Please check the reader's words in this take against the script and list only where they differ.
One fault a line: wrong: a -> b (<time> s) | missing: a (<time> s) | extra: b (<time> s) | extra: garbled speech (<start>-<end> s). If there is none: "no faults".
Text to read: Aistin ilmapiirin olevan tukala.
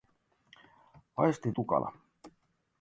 missing: ilmapiirin olevan (1.6 s)